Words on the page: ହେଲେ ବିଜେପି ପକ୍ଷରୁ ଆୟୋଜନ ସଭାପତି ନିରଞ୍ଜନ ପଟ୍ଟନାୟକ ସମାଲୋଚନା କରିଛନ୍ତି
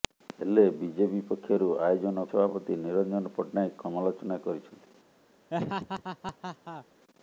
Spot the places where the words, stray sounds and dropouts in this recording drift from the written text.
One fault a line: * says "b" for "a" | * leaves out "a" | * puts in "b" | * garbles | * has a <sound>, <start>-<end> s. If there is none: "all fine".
* has a laugh, 5.5-6.9 s